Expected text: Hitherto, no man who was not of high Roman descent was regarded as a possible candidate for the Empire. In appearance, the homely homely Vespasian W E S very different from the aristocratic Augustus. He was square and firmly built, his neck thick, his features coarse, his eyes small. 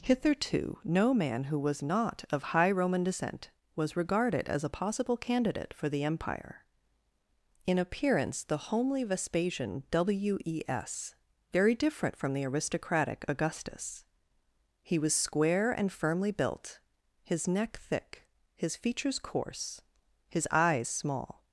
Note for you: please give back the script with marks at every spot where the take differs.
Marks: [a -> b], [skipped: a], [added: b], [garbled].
Hitherto, no man who was not of high Roman descent was regarded as a possible candidate for the Empire. In appearance, the homely [skipped: homely] Vespasian W E S very different from the aristocratic Augustus. He was square and firmly built, his neck thick, his features coarse, his eyes small.